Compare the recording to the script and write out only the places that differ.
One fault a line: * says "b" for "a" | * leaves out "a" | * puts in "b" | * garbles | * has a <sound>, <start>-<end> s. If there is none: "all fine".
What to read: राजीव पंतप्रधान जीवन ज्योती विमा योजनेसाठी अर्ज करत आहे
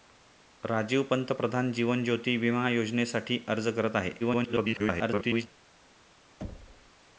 * garbles
* has a thud, 6.4-6.9 s